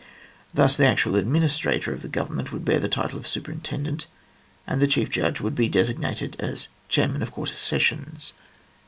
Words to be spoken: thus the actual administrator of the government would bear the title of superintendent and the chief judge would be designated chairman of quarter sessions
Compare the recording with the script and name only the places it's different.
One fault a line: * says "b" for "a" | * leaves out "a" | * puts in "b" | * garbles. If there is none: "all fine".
* puts in "as"